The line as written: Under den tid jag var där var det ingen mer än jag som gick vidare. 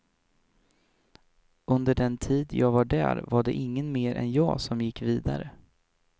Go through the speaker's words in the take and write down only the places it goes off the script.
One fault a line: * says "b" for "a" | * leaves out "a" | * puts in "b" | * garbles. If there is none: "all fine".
all fine